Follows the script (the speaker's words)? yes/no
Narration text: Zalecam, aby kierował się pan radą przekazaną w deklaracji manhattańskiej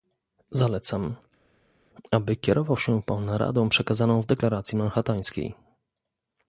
yes